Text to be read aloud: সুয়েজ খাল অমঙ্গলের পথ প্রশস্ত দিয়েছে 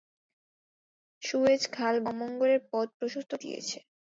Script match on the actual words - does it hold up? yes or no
yes